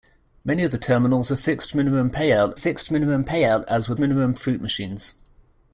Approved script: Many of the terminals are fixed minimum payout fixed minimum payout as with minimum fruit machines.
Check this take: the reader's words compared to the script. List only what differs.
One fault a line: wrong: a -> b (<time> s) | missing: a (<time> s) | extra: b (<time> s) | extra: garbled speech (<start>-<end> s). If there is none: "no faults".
no faults